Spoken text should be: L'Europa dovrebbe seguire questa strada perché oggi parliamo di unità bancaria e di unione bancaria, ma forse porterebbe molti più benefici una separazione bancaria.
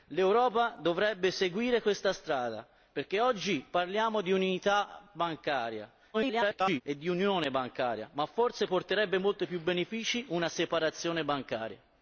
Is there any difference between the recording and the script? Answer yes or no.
yes